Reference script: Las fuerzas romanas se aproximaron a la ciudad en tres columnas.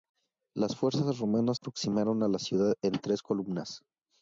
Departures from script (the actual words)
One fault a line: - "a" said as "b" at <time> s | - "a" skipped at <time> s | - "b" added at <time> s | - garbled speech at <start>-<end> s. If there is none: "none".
- "se" skipped at 1.6 s